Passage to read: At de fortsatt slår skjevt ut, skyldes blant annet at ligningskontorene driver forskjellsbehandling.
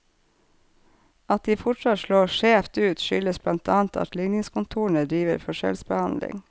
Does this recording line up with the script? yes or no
yes